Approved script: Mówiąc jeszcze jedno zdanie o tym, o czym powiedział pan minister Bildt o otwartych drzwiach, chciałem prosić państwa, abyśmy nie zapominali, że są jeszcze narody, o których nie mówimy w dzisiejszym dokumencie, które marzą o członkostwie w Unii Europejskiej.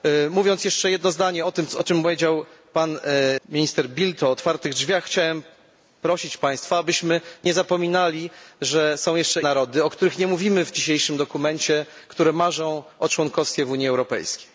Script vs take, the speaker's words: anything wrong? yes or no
no